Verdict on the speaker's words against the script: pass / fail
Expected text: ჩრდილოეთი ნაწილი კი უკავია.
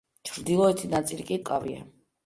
pass